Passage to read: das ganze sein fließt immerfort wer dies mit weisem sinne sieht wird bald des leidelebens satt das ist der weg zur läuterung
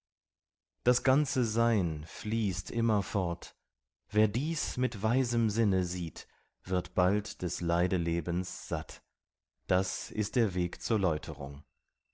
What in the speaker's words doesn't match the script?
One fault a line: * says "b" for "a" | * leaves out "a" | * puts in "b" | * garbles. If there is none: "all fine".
all fine